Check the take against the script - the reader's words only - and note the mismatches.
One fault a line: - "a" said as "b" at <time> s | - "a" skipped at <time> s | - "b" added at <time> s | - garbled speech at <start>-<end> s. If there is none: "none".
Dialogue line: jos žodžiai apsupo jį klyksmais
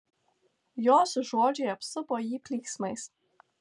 none